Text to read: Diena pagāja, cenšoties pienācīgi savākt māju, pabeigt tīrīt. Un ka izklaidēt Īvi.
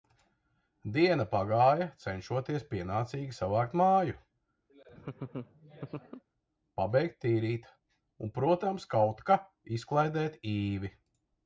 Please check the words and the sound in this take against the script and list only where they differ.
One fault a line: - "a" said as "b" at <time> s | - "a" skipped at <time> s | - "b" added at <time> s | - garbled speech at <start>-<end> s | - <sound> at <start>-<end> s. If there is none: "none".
- laugh at 4.7-6.2 s
- "protams kaut" added at 8.4 s